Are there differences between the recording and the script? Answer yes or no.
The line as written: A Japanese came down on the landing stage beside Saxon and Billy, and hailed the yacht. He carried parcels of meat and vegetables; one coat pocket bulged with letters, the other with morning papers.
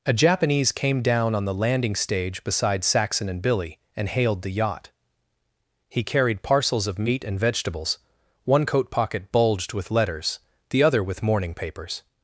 no